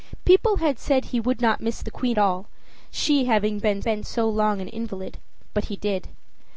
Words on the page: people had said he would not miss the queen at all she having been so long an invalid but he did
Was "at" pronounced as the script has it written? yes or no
no